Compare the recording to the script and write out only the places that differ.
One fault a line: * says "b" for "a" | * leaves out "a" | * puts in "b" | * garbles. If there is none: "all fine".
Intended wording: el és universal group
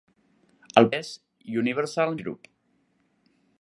all fine